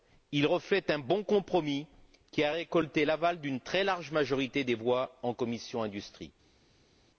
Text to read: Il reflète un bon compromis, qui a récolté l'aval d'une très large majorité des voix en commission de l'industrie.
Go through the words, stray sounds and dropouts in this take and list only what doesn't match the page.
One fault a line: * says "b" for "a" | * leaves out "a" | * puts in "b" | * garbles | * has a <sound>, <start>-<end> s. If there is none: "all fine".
all fine